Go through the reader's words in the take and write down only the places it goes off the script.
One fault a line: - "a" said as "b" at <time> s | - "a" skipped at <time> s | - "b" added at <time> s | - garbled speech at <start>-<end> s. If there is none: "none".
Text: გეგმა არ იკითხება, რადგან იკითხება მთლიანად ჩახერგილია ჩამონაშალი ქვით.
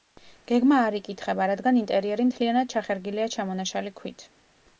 - "იკითხება" said as "ინტერიერი" at 1.8 s